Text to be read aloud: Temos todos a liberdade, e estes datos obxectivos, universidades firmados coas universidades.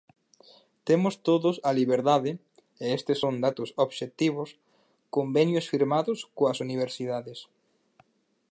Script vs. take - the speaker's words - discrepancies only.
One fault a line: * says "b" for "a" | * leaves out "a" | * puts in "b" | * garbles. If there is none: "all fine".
* puts in "son"
* says "convenios" for "universidades"